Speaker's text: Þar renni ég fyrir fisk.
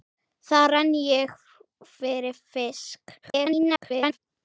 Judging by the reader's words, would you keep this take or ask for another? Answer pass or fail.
fail